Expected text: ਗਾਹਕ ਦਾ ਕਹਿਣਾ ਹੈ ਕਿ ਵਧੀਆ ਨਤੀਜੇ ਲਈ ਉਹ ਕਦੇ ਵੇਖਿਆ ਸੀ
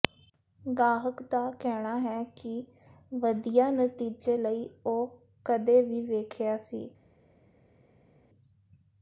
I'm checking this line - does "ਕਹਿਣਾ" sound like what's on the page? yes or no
yes